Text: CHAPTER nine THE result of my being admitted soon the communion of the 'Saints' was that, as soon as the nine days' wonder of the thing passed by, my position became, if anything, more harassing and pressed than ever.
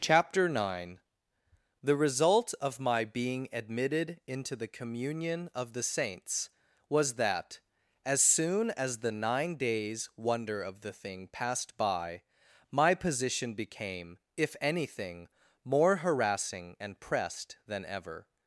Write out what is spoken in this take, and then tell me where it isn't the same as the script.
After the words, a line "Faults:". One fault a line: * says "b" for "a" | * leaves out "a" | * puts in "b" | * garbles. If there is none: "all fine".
CHAPTER nine THE result of my being admitted into the communion of the 'Saints' was that, as soon as the nine days' wonder of the thing passed by, my position became, if anything, more harassing and pressed than ever.
Faults:
* says "into" for "soon"